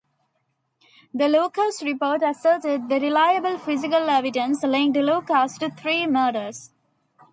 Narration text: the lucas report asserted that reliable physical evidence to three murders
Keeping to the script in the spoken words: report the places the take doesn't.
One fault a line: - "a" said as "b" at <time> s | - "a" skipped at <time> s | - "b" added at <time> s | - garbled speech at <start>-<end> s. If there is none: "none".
- "linked lucas" added at 4.6 s